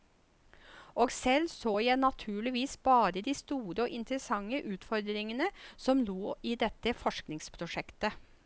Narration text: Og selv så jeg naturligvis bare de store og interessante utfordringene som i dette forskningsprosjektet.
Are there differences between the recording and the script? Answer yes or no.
yes